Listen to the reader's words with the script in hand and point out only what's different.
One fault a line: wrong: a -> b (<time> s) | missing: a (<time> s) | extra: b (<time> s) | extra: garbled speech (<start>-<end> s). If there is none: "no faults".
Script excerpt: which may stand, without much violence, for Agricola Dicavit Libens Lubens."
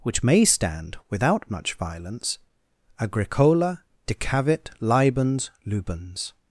missing: for (2.4 s)